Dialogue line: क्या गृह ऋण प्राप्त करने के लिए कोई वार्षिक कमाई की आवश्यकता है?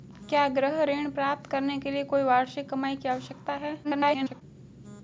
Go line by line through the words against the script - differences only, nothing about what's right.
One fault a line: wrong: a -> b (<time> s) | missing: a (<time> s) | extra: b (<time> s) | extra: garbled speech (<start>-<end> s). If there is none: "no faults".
extra: garbled speech (3.8-4.4 s)